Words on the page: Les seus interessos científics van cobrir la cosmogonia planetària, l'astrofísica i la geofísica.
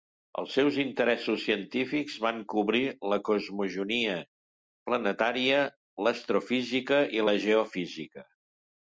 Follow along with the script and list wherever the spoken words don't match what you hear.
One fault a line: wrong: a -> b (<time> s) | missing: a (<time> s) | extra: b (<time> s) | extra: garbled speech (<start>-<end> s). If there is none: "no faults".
wrong: Les -> Els (0.4 s)